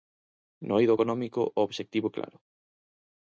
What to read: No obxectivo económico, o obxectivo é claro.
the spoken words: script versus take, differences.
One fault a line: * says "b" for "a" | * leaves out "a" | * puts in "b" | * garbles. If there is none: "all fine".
* says "eido" for "obxectivo"